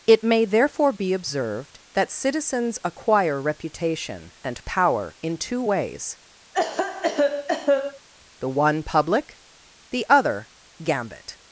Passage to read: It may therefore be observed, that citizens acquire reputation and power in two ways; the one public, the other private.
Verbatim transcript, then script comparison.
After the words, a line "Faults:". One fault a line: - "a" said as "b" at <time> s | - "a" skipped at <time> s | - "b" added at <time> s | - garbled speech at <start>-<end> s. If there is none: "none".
It may therefore be observed, that citizens acquire reputation and power in two ways; the one public, the other gambit.
Faults:
- "private" said as "gambit" at 10.8 s